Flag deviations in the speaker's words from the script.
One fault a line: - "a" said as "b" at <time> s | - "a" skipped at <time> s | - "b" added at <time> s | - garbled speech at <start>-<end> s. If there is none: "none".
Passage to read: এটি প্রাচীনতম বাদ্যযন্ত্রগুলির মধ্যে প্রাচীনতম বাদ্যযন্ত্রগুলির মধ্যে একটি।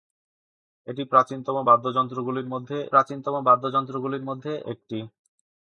none